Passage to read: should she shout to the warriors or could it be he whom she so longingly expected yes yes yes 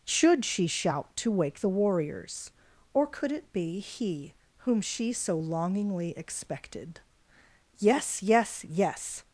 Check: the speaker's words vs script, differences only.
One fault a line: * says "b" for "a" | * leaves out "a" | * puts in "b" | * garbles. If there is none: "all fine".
* puts in "wake"